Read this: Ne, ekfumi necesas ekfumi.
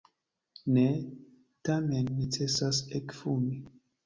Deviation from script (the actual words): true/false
true